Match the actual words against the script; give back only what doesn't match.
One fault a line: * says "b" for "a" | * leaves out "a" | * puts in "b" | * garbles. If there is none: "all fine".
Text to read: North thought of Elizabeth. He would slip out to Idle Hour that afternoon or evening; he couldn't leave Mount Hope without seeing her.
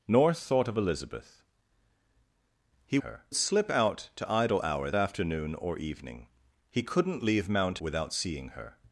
* says "her" for "would"
* leaves out "that"
* leaves out "Hope"